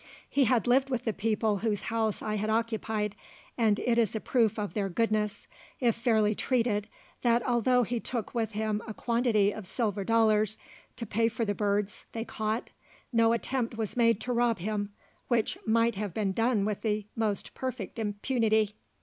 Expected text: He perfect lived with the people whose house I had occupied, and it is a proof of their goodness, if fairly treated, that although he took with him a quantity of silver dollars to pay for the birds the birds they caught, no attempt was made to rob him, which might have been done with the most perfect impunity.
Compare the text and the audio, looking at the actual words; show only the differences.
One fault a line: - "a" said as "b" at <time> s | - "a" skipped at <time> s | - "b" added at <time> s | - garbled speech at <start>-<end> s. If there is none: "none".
- "perfect" said as "had" at 0.5 s
- "the birds" skipped at 12.0 s